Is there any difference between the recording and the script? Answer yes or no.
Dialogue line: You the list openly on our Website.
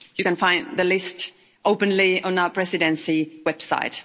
yes